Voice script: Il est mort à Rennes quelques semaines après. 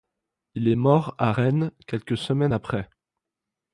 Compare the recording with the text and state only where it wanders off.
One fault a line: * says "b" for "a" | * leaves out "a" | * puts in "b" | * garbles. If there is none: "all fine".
all fine